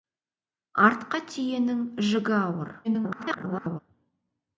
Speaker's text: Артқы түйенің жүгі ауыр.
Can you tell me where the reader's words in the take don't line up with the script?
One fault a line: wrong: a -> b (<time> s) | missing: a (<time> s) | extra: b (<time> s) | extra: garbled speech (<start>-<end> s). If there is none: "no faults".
extra: garbled speech (2.8-3.8 s)